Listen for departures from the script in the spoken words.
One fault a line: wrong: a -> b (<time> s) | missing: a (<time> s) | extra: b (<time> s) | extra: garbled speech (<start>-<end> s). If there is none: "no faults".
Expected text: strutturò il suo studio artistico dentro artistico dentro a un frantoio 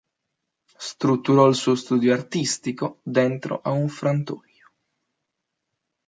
missing: artistico dentro (3.6 s)